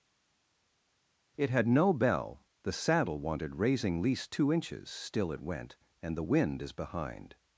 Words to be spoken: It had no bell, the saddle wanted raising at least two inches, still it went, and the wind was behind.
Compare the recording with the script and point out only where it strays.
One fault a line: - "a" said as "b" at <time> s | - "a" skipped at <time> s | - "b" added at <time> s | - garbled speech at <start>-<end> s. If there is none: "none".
- "at" skipped at 4.0 s
- "was" said as "is" at 6.6 s